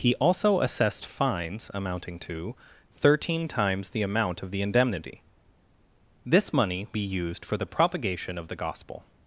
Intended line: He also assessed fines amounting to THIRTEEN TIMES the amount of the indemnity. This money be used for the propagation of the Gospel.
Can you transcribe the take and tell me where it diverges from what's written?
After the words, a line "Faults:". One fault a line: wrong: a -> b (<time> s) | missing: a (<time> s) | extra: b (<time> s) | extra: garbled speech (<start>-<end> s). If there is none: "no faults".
He also assessed fines amounting to THIRTEEN TIMES the amount of the indemnity. This money be used for the propagation of the Gospel.
Faults:
no faults